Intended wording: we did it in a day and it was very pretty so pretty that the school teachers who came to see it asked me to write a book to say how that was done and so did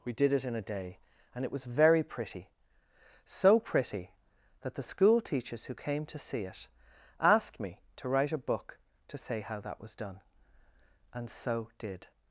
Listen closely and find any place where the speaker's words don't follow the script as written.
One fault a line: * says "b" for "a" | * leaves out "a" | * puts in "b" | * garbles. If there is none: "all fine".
all fine